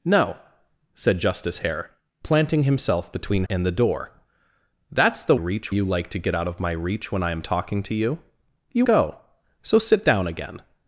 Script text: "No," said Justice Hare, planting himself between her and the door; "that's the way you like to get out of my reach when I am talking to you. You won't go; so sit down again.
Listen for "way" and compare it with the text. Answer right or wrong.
wrong